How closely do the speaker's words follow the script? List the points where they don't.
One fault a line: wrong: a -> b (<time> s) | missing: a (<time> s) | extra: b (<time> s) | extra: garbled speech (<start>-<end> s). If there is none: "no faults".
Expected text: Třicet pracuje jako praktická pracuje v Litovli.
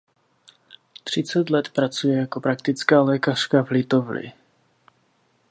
extra: let (1.5 s)
wrong: pracuje -> lékařka (3.0 s)